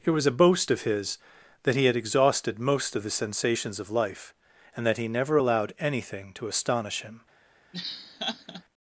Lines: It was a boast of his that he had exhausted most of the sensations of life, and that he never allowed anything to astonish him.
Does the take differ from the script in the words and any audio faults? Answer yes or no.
yes